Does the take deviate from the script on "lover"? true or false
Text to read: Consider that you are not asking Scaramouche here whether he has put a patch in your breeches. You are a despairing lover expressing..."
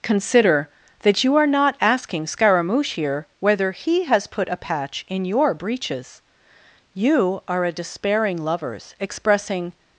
true